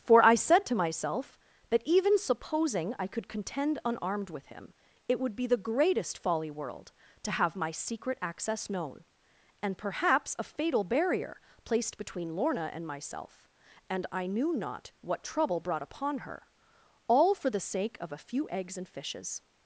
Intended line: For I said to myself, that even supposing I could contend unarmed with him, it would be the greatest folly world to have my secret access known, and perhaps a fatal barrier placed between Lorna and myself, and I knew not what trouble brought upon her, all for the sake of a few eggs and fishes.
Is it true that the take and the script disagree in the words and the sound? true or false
false